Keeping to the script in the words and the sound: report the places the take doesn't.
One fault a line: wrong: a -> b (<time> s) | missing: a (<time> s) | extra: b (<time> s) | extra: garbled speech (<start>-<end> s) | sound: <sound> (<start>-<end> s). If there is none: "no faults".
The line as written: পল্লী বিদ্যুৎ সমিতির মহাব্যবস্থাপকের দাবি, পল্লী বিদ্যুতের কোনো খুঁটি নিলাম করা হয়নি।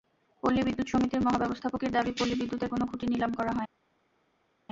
no faults